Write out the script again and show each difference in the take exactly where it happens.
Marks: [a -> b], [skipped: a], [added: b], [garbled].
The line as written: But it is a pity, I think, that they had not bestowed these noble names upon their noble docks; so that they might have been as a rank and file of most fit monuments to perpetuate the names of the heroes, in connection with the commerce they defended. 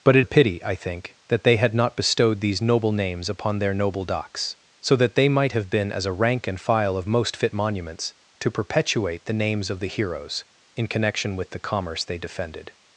But it [skipped: is] a pity, I think, that they had not bestowed these noble names upon their noble docks; so that they might have been as a rank and file of most fit monuments to perpetuate the names of the heroes, in connection with the commerce they defended.